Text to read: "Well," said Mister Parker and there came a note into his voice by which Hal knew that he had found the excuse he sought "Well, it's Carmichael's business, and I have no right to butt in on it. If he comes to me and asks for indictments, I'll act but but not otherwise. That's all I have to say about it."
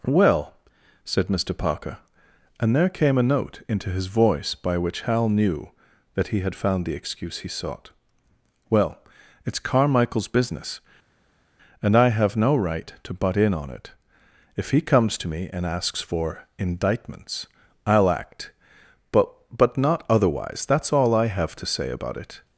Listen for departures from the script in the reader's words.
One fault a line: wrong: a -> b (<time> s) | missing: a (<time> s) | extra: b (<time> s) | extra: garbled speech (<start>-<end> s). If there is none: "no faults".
no faults